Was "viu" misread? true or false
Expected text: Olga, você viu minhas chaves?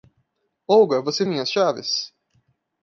true